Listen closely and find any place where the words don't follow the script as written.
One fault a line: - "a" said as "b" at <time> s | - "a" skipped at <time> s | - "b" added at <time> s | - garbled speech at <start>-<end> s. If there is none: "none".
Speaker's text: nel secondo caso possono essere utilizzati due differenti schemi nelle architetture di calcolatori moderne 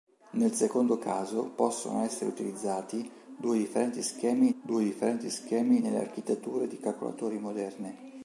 - "due differenti schemi" added at 4.6 s